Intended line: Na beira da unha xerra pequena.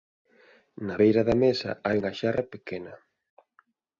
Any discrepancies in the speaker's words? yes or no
yes